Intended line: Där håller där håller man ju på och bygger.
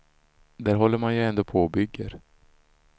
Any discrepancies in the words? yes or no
yes